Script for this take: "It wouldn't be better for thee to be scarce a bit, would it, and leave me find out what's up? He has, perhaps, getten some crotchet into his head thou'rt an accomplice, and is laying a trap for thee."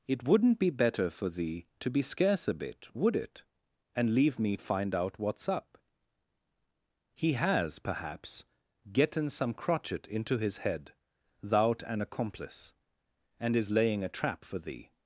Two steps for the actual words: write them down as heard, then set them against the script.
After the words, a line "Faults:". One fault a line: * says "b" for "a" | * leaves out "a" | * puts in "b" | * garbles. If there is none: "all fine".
"It wouldn't be better for thee to be scarce a bit, would it, and leave me find out what's up? He has, perhaps, getten some crotchet into his head thou'rt an accomplice, and is laying a trap for thee."
Faults:
all fine